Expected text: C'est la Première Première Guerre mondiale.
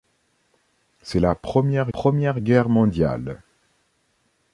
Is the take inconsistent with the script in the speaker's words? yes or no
no